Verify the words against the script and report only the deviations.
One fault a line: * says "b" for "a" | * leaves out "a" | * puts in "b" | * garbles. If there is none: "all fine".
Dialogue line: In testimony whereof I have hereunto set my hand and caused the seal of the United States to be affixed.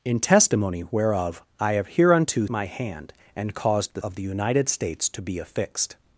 * leaves out "set"
* leaves out "seal"